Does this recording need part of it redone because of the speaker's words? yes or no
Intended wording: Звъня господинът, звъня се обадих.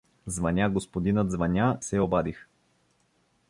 no